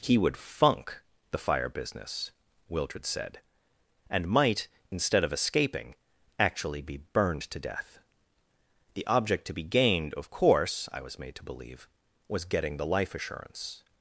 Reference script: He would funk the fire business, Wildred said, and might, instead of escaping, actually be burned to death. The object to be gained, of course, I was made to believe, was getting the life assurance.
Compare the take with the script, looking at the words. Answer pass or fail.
pass